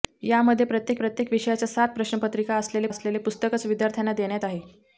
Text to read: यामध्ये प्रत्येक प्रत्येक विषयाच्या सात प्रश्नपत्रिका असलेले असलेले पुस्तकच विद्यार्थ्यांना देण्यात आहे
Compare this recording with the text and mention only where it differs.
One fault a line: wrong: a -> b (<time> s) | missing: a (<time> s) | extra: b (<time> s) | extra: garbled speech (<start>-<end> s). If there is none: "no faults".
no faults